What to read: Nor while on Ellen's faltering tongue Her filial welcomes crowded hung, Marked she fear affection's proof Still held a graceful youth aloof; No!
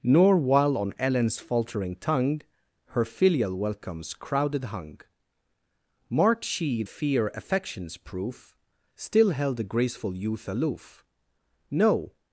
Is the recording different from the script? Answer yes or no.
no